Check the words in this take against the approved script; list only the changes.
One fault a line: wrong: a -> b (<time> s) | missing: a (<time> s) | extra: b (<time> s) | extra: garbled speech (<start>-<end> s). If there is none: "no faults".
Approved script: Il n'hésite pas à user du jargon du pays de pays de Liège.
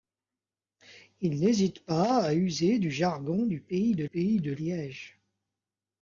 no faults